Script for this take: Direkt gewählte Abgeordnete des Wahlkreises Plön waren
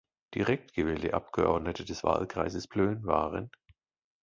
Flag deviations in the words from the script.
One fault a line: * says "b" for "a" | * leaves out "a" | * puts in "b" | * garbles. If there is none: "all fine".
all fine